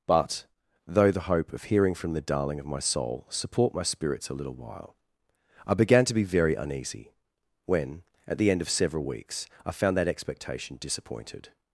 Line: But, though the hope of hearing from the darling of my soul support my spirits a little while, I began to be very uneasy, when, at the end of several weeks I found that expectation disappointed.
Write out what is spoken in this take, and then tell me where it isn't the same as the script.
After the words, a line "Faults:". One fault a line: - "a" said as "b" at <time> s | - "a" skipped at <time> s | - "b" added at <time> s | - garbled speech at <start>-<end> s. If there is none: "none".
But, though the hope of hearing from the darling of my soul support my spirits a little while, I began to be very uneasy, when, at the end of several weeks I found that expectation disappointed.
Faults:
none